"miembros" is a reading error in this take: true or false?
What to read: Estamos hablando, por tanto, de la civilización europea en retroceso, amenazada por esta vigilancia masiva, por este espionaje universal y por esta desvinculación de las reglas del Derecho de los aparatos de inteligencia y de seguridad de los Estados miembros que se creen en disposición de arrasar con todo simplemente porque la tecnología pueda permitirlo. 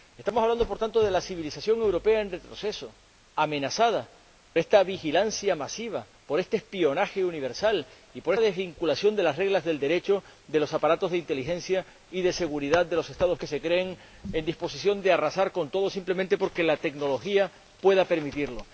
true